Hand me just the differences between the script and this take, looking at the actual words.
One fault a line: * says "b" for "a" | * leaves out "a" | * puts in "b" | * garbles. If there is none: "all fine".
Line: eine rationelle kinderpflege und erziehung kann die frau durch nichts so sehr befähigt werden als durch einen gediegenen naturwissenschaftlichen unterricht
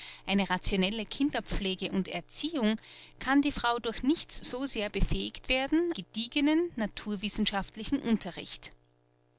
* leaves out "als durch einen"